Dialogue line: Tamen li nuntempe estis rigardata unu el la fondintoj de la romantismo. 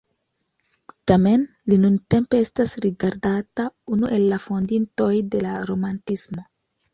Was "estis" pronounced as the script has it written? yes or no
no